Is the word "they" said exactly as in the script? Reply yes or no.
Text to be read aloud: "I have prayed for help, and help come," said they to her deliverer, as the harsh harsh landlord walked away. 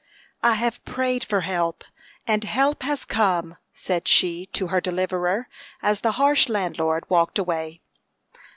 no